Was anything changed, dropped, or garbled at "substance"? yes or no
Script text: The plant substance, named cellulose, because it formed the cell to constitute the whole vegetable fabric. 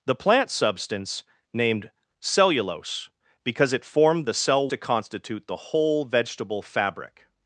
no